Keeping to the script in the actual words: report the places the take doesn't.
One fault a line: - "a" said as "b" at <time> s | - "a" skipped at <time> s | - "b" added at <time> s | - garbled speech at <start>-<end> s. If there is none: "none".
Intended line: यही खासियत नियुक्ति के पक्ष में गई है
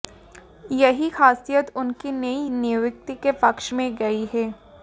- "उनकी नई" added at 1.8 s